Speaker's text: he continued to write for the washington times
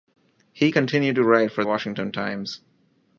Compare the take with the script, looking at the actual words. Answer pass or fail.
fail